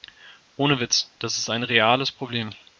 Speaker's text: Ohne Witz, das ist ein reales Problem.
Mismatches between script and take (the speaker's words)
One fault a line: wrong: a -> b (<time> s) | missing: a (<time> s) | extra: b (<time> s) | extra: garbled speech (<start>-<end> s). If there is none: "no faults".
no faults